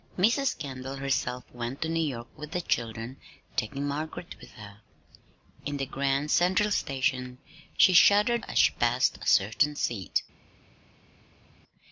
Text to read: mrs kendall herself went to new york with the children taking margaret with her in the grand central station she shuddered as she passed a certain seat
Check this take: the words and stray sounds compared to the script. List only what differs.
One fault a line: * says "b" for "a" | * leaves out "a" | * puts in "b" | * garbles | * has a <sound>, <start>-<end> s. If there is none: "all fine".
all fine